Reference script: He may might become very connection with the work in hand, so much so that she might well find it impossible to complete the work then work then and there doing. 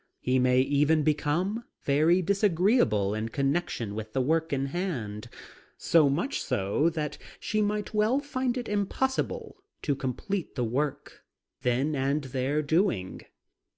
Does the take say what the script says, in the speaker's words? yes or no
no